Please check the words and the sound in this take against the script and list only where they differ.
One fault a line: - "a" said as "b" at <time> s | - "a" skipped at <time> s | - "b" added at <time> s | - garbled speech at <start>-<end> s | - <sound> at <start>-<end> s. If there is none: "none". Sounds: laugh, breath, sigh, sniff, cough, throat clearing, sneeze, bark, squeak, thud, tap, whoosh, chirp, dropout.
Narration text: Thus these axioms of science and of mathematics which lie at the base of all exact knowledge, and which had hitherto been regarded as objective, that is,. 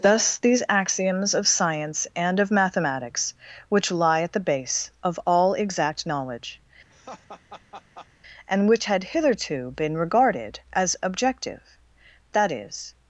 - laugh at 6.9-8.1 s